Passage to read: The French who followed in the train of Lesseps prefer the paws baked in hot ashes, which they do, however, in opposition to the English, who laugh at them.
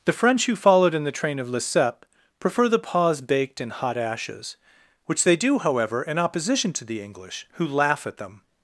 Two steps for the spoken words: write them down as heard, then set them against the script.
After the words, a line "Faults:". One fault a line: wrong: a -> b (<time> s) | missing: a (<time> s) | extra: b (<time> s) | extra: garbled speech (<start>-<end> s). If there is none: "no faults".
The French who followed in the train of Lesseps prefer the paws baked in hot ashes, which they do, however, in opposition to the English, who laugh at them.
Faults:
no faults